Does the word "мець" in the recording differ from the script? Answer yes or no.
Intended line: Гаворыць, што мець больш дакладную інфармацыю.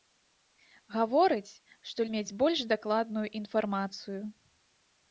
no